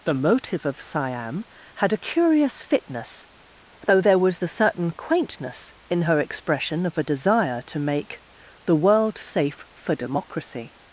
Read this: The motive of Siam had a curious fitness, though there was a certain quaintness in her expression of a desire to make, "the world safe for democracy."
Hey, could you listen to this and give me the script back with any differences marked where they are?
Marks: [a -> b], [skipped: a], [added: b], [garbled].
The motive of Siam had a curious fitness, though there was [a -> the] certain quaintness in her expression of a desire to make, "the world safe for democracy."